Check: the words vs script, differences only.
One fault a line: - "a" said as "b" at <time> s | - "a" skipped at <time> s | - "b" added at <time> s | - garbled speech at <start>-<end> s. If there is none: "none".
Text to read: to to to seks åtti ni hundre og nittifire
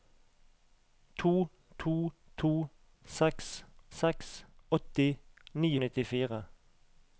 - "seks" added at 4.0 s
- "hundre" skipped at 5.7 s